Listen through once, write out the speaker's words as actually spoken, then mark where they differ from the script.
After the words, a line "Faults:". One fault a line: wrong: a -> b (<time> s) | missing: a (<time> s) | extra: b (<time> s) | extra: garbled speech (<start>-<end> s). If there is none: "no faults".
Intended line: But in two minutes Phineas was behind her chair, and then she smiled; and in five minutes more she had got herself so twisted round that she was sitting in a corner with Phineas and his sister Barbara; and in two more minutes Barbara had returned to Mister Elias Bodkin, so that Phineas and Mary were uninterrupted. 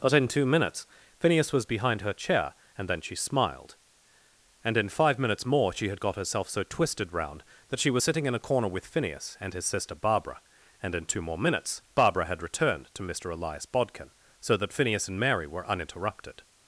But in two minutes Phineas was behind her chair, and then she smiled; and in five minutes more she had got herself so twisted round that she was sitting in a corner with Phineas and his sister Barbara; and in two more minutes Barbara had returned to Mister Elias Bodkin, so that Phineas and Mary were uninterrupted.
Faults:
no faults